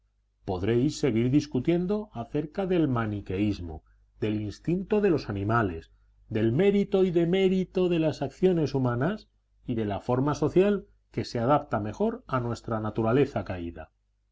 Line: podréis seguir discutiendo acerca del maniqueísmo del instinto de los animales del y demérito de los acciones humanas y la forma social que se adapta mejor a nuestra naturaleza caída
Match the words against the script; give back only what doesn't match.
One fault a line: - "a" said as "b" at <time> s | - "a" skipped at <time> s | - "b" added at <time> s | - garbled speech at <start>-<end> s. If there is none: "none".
- "mérito" added at 6.5 s
- "los" said as "las" at 8.0 s
- "de" added at 9.7 s